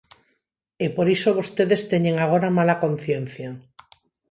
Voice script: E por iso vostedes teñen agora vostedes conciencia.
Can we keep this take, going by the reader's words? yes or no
no